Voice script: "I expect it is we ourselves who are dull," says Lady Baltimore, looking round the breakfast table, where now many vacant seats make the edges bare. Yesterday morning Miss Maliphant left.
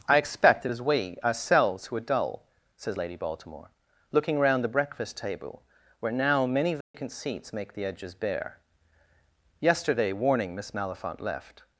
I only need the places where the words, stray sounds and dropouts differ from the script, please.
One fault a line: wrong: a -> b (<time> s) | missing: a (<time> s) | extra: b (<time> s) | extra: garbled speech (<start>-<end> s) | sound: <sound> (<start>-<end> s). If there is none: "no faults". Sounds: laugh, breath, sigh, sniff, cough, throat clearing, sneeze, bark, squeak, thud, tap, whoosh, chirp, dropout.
sound: dropout (6.8-6.9 s)
wrong: morning -> warning (10.1 s)